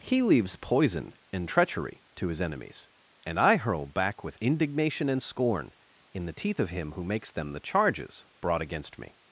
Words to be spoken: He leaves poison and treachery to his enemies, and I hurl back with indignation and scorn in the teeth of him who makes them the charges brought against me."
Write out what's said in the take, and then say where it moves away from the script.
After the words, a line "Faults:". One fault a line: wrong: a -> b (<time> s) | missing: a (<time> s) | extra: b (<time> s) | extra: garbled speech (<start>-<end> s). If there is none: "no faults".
He leaves poison and treachery to his enemies, and I hurl back with indignation and scorn in the teeth of him who makes them the charges brought against me."
Faults:
no faults